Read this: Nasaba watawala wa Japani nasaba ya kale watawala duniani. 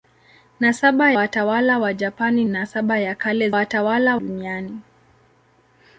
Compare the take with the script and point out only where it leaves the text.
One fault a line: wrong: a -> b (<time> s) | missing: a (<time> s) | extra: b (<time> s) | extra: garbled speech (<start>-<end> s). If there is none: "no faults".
no faults